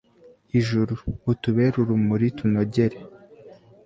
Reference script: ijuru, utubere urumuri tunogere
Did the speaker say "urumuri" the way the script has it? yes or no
yes